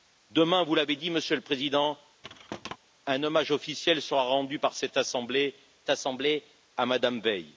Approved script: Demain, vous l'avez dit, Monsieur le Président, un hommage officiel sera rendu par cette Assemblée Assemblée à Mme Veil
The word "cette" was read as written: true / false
true